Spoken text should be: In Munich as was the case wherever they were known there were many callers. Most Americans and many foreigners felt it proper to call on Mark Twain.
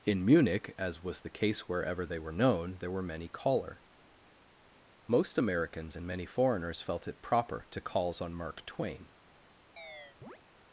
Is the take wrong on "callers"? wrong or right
wrong